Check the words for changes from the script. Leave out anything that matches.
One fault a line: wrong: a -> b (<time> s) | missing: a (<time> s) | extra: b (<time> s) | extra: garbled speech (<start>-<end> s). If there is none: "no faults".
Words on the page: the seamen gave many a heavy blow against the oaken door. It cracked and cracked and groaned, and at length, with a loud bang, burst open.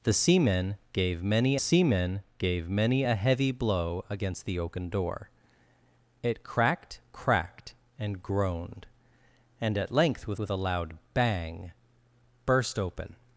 extra: seamen gave many (1.6 s)
missing: and (7.0 s)
extra: with (10.4 s)